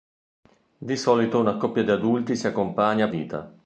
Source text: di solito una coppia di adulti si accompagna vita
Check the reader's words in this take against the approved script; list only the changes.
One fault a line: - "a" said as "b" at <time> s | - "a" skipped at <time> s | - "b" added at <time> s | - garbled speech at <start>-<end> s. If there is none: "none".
none